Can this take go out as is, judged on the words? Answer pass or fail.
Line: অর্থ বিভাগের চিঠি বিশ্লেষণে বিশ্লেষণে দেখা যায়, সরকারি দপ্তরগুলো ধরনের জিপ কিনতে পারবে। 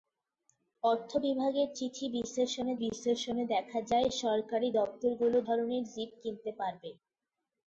pass